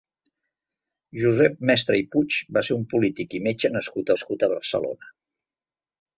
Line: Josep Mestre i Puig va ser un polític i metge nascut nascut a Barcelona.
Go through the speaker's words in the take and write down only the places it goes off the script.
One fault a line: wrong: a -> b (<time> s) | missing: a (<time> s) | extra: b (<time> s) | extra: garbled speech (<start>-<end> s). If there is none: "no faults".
no faults